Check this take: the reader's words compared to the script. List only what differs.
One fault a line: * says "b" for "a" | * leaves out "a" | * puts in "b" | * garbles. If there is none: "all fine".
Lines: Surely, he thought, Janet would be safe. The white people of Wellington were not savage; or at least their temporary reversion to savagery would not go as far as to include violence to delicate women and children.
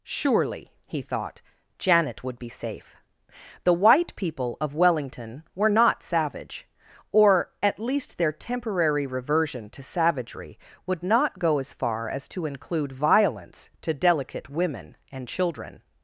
all fine